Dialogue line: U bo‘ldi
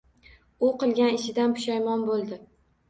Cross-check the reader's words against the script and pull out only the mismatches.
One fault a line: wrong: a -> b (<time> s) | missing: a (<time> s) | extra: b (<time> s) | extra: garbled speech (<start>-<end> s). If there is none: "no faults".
extra: qilgan ishidan pushaymon (0.8 s)